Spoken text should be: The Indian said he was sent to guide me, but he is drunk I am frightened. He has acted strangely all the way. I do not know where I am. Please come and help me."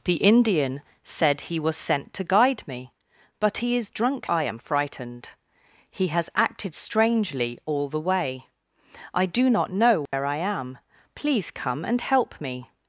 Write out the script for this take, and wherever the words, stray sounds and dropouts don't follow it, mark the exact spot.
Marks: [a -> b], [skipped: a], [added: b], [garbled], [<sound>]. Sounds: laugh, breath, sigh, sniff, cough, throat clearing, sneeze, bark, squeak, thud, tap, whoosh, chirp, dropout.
The Indian said he was sent to guide me, but he is drunk I am frightened. He has acted strangely all the way. I do not know where [dropout] I am. Please come and help me."